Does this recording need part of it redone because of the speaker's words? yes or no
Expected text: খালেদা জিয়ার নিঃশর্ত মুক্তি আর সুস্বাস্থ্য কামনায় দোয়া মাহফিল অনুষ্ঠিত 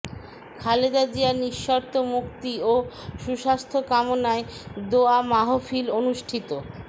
yes